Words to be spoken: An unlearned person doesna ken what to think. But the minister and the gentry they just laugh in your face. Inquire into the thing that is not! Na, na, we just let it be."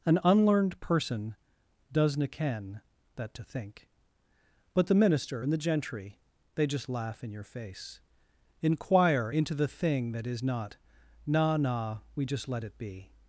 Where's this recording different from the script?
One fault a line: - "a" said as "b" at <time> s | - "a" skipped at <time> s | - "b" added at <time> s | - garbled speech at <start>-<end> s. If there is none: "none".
- "what" said as "that" at 3.2 s